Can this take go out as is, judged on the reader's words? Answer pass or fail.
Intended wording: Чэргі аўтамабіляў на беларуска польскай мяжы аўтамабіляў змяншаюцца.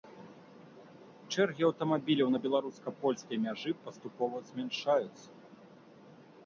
fail